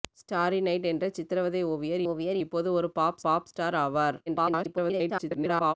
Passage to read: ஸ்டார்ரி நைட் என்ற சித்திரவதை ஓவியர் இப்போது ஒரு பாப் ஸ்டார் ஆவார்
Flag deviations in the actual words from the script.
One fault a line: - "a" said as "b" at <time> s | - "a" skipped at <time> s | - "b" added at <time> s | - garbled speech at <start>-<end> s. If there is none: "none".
- "ஓவியர்" added at 2.0 s
- "பாப்" added at 3.2 s
- garbled speech at 4.3-5.7 s